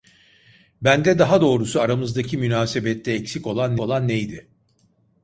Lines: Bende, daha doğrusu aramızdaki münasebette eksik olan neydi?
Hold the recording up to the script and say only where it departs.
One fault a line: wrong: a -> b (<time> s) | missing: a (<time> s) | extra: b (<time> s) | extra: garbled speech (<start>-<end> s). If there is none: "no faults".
extra: olan (3.8 s)